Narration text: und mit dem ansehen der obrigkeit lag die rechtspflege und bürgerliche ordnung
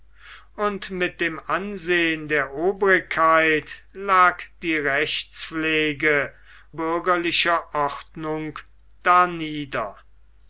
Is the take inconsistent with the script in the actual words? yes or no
yes